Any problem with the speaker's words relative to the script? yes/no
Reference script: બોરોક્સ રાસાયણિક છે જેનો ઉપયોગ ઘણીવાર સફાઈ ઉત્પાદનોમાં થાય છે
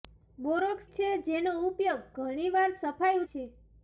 yes